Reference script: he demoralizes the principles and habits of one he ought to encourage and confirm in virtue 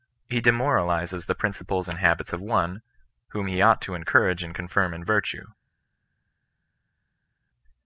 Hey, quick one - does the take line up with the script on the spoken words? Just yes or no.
no